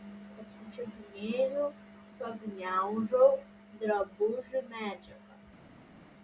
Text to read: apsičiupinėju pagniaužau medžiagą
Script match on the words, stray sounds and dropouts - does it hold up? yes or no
no